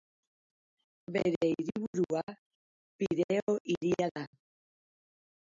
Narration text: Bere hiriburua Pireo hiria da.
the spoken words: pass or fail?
pass